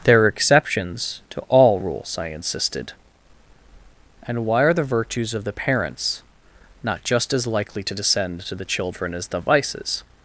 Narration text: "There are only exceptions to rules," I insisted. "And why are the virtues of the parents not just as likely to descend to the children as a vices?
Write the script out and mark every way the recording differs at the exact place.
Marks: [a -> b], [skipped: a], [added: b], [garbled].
"There are [skipped: only] exceptions to [added: all] rules," I insisted. "And why are the virtues of the parents not just as likely to descend to the children as [a -> the] vices?